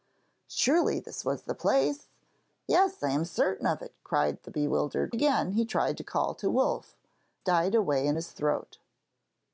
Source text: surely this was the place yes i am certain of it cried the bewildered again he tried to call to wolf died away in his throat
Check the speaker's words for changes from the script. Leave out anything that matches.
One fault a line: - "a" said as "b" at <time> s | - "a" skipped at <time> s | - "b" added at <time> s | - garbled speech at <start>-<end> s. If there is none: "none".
none